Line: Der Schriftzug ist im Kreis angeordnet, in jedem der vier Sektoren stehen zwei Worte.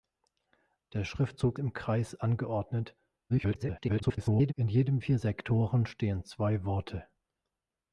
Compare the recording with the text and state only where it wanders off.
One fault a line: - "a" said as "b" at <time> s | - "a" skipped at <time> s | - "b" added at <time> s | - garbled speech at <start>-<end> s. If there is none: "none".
- "ist" skipped at 1.6 s
- garbled speech at 3.3-4.5 s
- "der" skipped at 5.0 s